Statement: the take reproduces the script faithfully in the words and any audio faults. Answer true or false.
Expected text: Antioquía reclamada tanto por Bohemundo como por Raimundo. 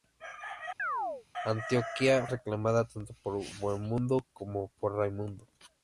false